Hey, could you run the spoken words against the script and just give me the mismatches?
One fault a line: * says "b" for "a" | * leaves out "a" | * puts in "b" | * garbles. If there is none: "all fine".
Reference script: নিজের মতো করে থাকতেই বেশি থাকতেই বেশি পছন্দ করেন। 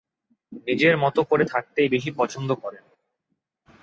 * leaves out "থাকতেই বেশি"